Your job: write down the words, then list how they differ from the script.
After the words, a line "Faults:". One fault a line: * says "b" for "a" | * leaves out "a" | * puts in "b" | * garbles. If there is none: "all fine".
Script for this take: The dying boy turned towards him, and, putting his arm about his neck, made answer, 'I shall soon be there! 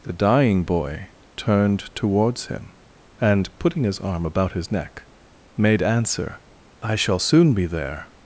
The dying boy turned towards him, and, putting his arm about his neck, made answer, 'I shall soon be there!
Faults:
all fine